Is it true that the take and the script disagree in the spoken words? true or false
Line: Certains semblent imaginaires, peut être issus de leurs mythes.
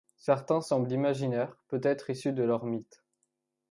false